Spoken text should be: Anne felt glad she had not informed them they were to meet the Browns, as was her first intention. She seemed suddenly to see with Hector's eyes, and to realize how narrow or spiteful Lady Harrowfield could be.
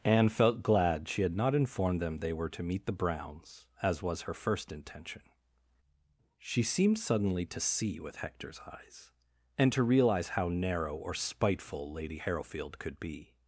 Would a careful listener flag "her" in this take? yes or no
no